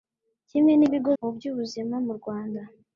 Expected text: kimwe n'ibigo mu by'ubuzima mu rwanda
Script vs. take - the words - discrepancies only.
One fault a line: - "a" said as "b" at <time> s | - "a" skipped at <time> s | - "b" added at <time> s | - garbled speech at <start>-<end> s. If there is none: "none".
none